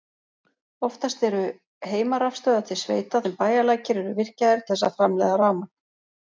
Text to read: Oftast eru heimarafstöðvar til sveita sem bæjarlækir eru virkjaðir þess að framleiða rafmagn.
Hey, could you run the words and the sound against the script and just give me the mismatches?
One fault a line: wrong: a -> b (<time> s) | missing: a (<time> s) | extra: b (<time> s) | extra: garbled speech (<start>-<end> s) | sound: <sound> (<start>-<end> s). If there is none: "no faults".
no faults